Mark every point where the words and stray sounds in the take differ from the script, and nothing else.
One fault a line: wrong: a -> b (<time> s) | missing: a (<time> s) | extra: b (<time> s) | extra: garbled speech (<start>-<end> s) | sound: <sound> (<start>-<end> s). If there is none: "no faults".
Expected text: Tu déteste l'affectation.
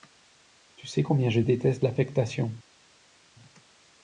extra: sais combien je (0.9 s)